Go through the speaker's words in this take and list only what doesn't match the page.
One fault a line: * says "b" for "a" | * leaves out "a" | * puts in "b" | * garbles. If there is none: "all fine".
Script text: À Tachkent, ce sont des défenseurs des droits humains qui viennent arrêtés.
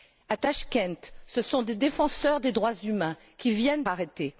all fine